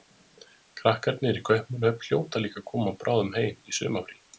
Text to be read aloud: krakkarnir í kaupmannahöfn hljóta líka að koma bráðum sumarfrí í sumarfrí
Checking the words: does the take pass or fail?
fail